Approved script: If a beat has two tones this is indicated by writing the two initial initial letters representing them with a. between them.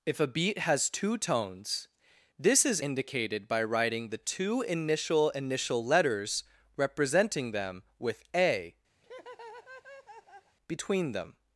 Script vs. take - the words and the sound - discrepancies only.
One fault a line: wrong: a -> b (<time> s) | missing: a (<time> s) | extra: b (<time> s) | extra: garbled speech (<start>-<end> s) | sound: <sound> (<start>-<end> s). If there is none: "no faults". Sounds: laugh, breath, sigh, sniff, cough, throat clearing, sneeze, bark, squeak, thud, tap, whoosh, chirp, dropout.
sound: laugh (9.0-10.6 s)